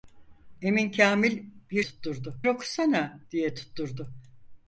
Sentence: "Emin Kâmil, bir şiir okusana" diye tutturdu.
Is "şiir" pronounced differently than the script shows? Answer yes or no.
yes